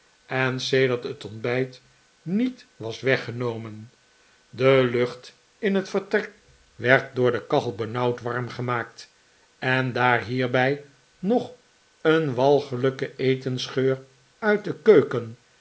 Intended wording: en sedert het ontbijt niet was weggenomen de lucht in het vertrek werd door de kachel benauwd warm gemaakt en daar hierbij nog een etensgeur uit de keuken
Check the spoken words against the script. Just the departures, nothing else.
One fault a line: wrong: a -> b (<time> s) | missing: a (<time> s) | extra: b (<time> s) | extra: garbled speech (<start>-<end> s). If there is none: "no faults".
extra: walgelijke (12.3 s)